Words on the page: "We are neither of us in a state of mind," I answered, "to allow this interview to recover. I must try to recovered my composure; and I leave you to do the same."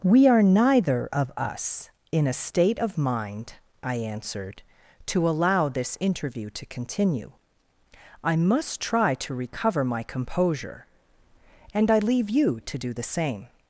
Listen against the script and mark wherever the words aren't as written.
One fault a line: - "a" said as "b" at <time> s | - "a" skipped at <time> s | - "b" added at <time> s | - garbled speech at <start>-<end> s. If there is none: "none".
- "recover" said as "continue" at 6.7 s
- "recovered" said as "recover" at 9.3 s